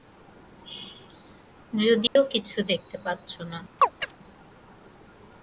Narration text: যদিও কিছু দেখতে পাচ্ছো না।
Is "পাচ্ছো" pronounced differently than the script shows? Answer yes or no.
no